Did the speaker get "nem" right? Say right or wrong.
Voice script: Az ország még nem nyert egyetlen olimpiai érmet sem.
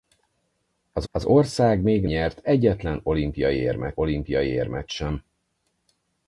wrong